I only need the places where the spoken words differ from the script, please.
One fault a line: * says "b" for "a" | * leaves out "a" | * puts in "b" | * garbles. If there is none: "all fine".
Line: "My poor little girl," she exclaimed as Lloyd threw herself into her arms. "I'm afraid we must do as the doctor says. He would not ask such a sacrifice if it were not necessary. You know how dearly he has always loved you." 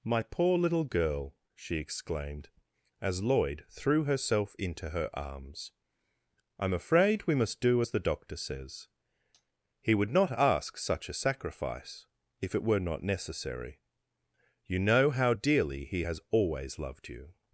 all fine